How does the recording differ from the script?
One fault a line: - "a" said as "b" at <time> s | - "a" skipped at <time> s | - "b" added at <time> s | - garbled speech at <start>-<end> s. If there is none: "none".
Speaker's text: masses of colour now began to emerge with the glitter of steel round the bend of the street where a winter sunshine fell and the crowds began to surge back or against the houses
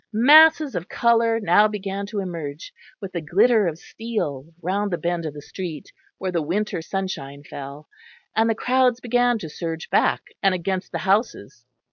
- "a" said as "the" at 6.3 s
- "or" said as "and" at 10.4 s